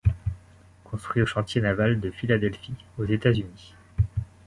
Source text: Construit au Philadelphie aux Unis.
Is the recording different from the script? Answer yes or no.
yes